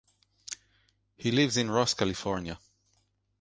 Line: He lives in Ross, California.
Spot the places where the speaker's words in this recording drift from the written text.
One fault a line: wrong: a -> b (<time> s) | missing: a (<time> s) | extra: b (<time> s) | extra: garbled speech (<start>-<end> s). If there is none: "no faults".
no faults